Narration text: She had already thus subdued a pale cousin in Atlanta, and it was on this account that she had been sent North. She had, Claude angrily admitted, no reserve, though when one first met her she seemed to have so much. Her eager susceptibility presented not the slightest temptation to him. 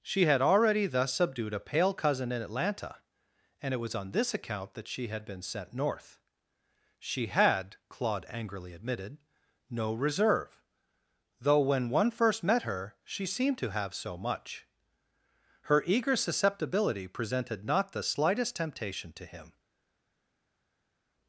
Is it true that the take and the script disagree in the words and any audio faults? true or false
false